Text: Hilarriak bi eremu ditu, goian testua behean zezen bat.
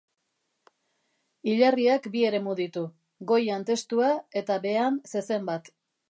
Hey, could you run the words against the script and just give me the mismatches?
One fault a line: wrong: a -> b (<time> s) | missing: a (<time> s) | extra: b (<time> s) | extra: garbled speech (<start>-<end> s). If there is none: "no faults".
extra: eta (4.4 s)